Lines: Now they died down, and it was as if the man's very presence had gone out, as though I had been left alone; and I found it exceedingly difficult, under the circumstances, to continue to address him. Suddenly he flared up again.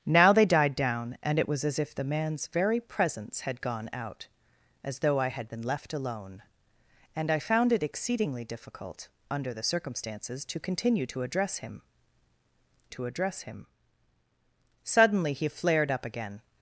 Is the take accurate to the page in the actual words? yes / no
no